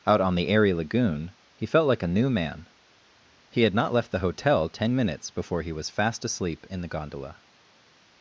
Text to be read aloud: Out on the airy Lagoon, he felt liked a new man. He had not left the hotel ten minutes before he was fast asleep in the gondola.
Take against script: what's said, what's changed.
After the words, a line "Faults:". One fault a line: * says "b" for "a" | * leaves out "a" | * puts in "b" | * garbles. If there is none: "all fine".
Out on the airy Lagoon, he felt like a new man. He had not left the hotel ten minutes before he was fast asleep in the gondola.
Faults:
* says "like" for "liked"